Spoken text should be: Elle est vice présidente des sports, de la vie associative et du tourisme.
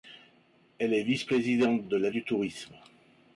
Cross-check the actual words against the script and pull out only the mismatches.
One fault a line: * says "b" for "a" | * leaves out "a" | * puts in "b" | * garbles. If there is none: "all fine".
* leaves out "des sports"
* leaves out "vie associative et"